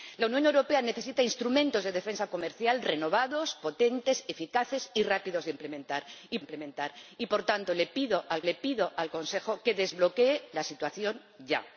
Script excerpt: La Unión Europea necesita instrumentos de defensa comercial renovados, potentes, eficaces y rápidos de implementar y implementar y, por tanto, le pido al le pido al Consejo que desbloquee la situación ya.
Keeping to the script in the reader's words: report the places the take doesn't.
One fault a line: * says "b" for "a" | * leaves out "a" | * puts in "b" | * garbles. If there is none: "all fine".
all fine